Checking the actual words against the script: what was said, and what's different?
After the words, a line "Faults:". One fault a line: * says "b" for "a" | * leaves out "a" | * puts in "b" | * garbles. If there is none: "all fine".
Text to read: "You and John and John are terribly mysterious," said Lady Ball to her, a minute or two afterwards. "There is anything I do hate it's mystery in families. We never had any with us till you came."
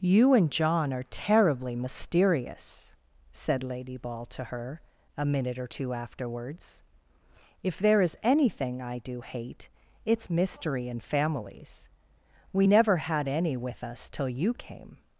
"You and John are terribly mysterious," said Lady Ball to her, a minute or two afterwards. "If there is anything I do hate it's mystery in families. We never had any with us till you came."
Faults:
* leaves out "and John"
* puts in "If"